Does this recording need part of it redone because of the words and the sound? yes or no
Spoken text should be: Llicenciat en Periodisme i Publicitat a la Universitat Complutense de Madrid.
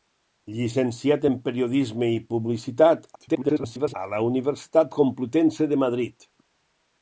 yes